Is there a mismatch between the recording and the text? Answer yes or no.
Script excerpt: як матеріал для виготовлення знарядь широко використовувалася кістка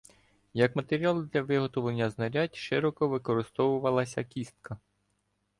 no